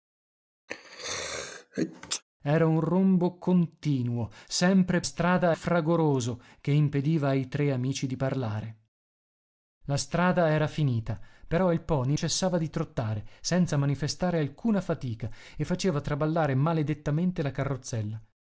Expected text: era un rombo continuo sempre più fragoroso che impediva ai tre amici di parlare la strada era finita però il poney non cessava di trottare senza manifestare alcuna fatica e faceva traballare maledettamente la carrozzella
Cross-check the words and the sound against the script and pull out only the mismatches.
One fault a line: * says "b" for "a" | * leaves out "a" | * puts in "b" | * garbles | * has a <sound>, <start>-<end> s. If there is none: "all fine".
* has a sneeze, 0.7-2.2 s
* says "strada" for "più"
* leaves out "non"